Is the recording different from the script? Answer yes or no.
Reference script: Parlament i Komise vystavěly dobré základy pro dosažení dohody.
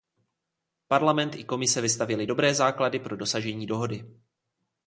no